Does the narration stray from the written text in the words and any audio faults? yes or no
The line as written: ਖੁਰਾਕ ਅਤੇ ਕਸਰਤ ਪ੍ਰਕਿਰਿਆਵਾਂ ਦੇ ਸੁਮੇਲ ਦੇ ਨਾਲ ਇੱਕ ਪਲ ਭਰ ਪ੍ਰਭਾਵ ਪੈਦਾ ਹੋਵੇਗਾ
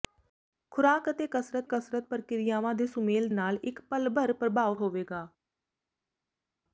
yes